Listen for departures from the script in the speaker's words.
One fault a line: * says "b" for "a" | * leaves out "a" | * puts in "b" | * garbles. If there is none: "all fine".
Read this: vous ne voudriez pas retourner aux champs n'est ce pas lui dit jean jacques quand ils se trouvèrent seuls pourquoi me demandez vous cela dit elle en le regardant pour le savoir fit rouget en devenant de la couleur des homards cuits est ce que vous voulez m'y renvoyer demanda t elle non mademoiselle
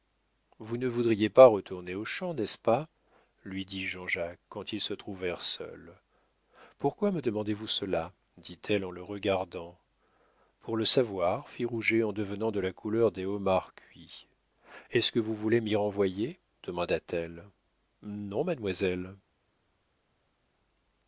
all fine